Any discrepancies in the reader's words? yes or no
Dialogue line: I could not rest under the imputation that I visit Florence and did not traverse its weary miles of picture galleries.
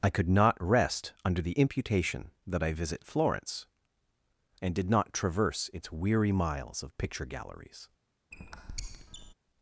no